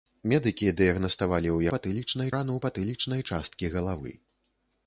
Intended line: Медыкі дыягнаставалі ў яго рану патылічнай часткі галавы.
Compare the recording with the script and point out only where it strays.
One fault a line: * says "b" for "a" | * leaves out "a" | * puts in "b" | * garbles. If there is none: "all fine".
* says "патылічнай" for "яго"